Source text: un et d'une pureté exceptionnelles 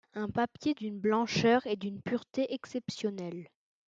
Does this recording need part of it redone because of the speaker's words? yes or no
yes